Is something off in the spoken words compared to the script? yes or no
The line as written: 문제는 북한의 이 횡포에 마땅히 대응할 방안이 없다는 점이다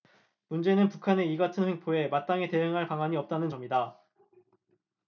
yes